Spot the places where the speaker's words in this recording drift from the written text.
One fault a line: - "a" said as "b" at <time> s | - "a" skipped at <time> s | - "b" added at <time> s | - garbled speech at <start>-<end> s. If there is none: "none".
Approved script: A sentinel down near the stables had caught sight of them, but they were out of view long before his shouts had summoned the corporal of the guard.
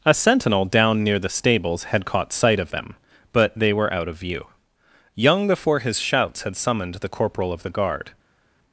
- "long" said as "young" at 5.2 s